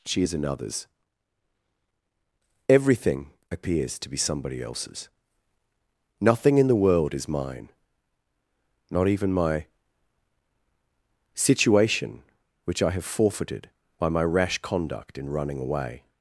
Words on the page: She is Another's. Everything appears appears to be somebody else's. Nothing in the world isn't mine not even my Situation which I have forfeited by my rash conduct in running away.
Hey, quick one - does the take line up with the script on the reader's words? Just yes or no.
no